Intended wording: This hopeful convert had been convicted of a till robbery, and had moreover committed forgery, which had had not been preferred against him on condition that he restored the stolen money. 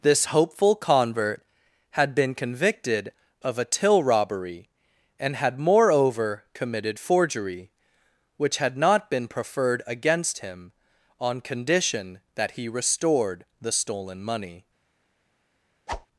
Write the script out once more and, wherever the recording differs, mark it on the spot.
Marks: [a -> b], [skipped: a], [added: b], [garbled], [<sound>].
This hopeful convert had been convicted of a till robbery, and had moreover committed forgery, which had [skipped: had] not been preferred against him on condition that he restored the stolen money. [whoosh]